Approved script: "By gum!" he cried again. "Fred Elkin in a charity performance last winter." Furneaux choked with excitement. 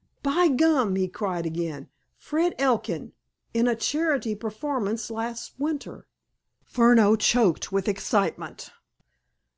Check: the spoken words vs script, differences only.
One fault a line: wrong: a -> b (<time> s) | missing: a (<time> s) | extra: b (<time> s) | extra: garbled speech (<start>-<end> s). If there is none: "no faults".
no faults